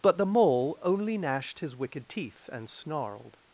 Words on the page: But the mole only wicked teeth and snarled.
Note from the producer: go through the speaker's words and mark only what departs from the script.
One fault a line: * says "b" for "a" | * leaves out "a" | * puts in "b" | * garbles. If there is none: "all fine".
* puts in "gnashed his"